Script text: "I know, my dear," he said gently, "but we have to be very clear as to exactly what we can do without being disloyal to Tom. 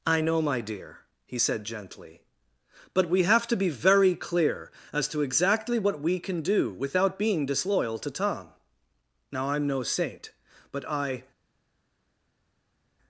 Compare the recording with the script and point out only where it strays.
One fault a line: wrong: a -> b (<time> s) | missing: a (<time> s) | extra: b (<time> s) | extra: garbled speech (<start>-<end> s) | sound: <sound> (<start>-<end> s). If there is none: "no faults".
extra: Now I'm no saint but I (9.3 s)